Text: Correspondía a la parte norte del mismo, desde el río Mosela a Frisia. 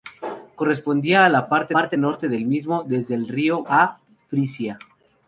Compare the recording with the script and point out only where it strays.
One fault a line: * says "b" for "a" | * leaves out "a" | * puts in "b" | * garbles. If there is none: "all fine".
* puts in "parte"
* leaves out "Mosela"